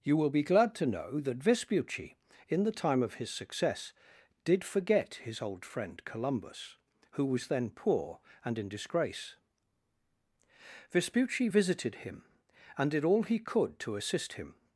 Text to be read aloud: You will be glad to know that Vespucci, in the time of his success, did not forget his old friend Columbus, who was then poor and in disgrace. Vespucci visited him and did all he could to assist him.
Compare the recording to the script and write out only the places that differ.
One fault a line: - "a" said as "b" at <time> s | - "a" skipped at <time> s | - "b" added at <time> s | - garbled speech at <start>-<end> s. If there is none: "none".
- "not" skipped at 4.6 s